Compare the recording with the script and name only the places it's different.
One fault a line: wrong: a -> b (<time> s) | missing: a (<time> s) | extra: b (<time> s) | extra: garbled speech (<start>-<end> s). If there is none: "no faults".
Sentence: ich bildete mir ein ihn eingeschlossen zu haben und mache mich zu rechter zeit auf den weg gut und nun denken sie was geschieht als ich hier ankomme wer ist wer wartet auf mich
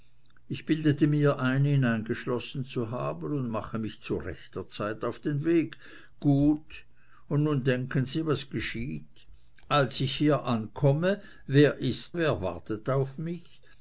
no faults